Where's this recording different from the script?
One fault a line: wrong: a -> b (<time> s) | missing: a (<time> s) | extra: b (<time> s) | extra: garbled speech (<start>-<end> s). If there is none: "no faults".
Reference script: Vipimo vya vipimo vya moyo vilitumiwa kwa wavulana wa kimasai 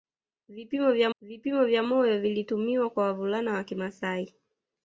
no faults